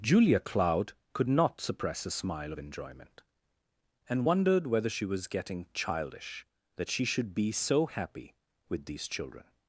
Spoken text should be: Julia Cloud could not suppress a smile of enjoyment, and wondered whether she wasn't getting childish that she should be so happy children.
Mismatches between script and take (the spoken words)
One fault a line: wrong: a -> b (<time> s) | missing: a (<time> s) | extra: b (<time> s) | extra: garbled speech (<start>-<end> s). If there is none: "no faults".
wrong: wasn't -> was (5.0 s)
extra: with these (8.7 s)